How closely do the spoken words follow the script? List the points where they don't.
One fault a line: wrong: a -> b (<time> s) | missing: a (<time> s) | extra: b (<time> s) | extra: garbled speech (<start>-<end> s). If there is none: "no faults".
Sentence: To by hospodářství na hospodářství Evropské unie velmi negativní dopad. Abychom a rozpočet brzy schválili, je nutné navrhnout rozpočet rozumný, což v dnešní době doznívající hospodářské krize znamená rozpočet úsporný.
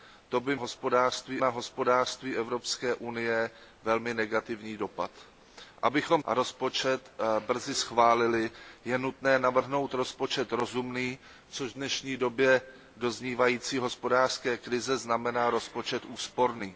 no faults